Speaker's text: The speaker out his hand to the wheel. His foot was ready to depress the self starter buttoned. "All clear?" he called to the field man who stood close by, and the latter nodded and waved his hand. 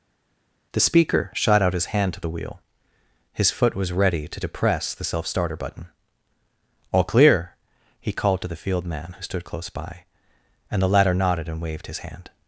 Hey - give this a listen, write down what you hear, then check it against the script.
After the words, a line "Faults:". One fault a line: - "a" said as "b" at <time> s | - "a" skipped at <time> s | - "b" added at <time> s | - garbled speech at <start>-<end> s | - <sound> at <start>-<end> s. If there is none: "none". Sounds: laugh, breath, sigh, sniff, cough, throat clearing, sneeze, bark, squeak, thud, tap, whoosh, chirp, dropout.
The speaker shot out his hand to the wheel. His foot was ready to depress the self starter button. "All clear?" he called to the field man who stood close by, and the latter nodded and waved his hand.
Faults:
- "shot" added at 1.3 s
- "buttoned" said as "button" at 5.6 s